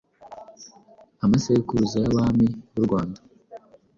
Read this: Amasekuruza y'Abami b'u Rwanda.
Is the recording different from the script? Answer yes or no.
no